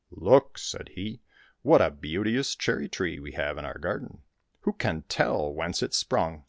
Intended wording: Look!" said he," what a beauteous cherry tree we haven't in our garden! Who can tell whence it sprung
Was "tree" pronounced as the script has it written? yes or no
yes